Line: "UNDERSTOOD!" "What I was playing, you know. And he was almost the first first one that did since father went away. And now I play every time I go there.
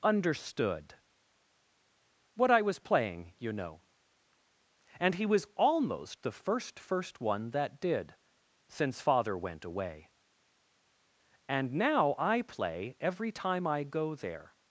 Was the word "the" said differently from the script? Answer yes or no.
no